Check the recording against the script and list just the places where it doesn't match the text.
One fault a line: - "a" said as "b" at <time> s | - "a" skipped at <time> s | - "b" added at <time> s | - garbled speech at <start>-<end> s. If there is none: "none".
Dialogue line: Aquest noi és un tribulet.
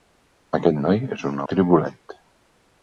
none